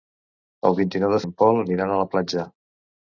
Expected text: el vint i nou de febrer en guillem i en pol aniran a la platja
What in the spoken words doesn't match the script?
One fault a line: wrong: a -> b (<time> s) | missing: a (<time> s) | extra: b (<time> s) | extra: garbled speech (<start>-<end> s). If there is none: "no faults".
missing: febrer en guillem (1.2 s)